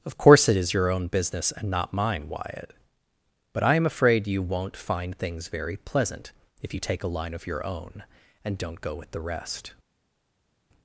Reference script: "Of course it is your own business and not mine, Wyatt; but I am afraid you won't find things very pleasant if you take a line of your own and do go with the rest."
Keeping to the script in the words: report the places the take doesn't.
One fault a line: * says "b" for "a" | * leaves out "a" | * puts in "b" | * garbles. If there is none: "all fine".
* says "don't" for "do"